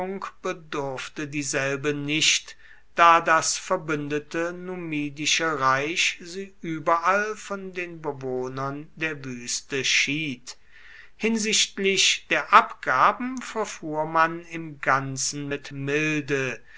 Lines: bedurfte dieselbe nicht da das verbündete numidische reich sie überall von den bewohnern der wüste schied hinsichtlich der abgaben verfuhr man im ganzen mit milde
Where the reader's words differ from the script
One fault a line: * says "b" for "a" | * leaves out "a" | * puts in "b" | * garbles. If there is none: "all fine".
all fine